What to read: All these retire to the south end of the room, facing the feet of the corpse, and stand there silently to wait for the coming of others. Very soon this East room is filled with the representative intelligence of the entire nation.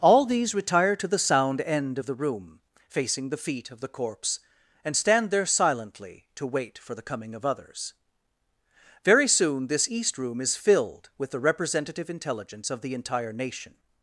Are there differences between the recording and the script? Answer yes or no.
yes